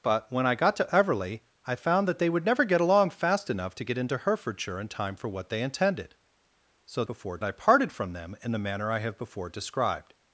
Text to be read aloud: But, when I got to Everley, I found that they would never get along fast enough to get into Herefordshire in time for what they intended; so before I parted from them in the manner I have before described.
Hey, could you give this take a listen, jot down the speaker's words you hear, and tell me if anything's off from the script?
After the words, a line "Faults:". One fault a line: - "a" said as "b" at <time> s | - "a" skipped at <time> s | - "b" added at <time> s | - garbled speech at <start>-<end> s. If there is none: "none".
But, when I got to Everley, I found that they would never get along fast enough to get into Herefordshire in time for what they intended; so before I parted from them in the manner I have before described.
Faults:
none